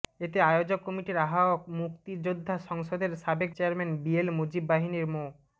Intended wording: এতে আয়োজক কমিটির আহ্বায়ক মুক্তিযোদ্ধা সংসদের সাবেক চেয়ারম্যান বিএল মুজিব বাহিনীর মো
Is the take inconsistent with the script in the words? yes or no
no